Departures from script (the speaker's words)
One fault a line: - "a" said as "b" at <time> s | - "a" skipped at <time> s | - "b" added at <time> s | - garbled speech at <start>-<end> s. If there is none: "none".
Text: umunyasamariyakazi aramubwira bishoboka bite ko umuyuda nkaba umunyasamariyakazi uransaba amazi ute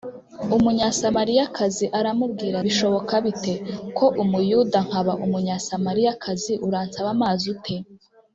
none